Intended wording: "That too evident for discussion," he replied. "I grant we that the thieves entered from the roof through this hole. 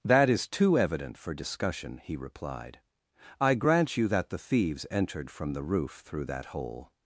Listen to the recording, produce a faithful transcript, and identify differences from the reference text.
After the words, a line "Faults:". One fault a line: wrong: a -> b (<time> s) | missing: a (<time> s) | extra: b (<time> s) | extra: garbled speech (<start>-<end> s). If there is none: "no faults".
"That is too evident for discussion," he replied. "I grant you that the thieves entered from the roof through that hole.
Faults:
extra: is (0.3 s)
wrong: we -> you (4.0 s)
wrong: this -> that (6.2 s)